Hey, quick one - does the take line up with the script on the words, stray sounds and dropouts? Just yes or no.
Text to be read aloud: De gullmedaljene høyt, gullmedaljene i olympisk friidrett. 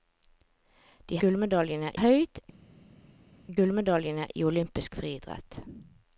yes